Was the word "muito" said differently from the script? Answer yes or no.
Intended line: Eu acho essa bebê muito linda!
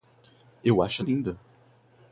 yes